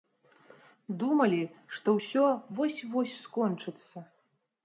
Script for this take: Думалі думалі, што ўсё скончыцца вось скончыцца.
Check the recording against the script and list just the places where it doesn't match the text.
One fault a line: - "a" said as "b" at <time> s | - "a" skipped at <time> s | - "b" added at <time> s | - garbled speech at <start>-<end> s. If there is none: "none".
- "думалі" skipped at 1.4 s
- "скончыцца" said as "вось" at 2.6 s